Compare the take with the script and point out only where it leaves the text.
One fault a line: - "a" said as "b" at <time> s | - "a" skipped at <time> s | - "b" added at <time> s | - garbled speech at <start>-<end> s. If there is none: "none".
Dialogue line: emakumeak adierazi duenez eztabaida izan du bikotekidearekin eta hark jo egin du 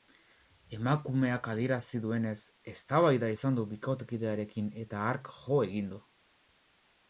none